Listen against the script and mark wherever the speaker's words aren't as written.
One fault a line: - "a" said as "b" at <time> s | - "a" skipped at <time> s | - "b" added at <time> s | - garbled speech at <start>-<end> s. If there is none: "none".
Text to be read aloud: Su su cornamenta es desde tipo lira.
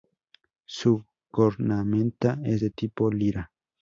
- "su" skipped at 1.1 s
- "desde" said as "de" at 2.6 s